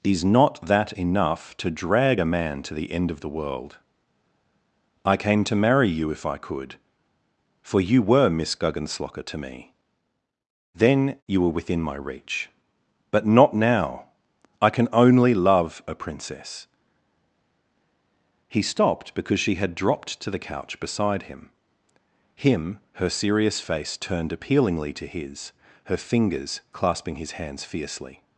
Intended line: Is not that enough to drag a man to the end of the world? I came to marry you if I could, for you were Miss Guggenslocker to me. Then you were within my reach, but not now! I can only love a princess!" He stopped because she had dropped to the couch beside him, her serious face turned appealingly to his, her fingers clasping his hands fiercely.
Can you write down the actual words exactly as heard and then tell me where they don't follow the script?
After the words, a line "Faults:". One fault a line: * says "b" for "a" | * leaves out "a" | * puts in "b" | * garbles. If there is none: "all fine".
Is not that enough to drag a man to the end of the world? I came to marry you if I could, for you were Miss Guggenslocker to me. Then you were within my reach, but not now! I can only love a princess!" He stopped because she had dropped to the couch beside him him, her serious face turned appealingly to his, her fingers clasping his hands fiercely.
Faults:
* puts in "him"